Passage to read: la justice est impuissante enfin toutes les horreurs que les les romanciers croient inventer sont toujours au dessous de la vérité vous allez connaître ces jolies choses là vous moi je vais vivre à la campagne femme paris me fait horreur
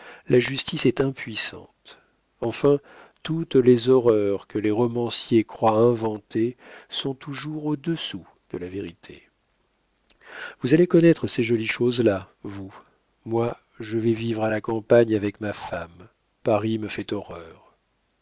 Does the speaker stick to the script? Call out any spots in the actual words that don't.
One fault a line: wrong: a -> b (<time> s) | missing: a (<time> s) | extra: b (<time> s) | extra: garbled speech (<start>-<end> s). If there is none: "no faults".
missing: les (4.7 s)
extra: avec ma (15.2 s)